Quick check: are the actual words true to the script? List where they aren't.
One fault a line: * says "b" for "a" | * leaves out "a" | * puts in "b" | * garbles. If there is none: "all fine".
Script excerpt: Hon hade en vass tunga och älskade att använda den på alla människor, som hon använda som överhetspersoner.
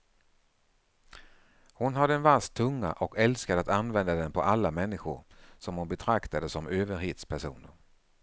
* says "betraktade" for "använda"